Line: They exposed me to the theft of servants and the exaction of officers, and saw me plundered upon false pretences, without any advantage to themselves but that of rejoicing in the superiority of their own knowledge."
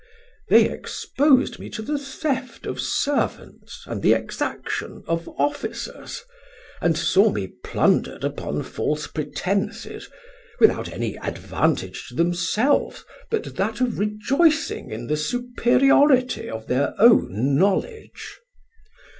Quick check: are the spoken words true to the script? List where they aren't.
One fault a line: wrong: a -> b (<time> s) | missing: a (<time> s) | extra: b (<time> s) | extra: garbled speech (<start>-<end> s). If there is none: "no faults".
no faults